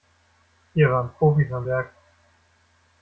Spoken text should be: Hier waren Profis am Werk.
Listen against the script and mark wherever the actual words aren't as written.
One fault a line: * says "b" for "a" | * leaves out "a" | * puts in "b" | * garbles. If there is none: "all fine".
all fine